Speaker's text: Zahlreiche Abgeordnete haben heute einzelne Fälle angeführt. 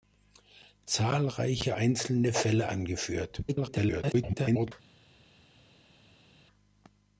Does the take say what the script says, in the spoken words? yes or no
no